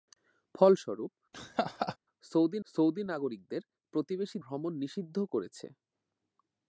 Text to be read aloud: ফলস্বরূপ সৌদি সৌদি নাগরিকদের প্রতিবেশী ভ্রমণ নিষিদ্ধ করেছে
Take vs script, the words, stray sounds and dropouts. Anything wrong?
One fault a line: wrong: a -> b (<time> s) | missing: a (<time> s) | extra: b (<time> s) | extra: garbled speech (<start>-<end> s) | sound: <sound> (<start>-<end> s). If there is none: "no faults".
sound: laugh (1.3-2.0 s)